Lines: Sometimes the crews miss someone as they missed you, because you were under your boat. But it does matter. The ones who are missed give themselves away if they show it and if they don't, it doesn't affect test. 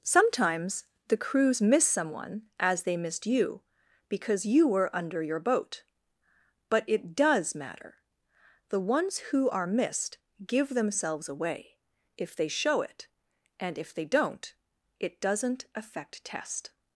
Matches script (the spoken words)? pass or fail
pass